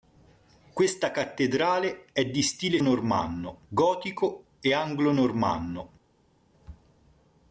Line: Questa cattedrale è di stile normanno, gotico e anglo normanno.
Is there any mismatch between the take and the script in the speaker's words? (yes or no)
no